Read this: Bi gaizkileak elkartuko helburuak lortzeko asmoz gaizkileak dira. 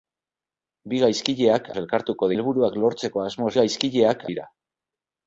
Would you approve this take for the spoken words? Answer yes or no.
yes